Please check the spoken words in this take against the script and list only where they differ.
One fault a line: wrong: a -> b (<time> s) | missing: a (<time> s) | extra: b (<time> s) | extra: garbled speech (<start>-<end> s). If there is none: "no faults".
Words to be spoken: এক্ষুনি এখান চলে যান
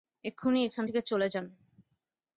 extra: থেকে (0.8 s)